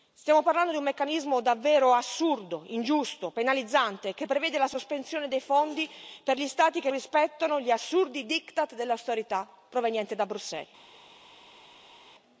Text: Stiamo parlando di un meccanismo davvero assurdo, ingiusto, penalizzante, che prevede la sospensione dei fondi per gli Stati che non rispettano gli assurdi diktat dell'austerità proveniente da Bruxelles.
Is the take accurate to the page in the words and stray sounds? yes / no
no